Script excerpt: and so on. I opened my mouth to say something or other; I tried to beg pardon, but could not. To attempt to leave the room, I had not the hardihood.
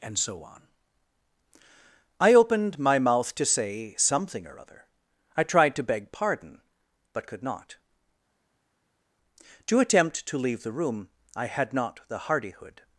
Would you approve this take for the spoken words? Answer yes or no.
yes